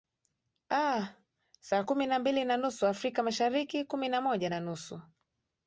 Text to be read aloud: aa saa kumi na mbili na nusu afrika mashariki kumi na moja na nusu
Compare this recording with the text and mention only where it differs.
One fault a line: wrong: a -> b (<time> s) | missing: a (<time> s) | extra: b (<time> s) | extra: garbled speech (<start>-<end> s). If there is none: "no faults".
no faults